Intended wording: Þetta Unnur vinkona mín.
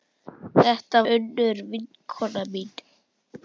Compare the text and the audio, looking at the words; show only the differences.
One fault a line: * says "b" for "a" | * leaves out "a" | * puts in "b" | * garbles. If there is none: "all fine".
all fine